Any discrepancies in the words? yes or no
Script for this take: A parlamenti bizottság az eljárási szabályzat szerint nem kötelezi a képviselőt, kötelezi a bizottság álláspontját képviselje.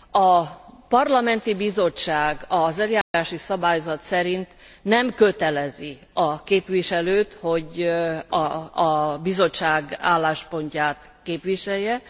yes